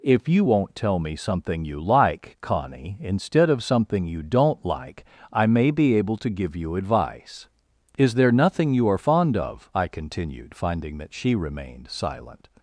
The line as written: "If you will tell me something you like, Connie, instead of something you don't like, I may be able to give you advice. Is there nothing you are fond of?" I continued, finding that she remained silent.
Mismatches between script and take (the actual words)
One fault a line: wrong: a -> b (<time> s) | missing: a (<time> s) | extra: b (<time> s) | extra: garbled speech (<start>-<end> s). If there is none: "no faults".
wrong: will -> won't (0.4 s)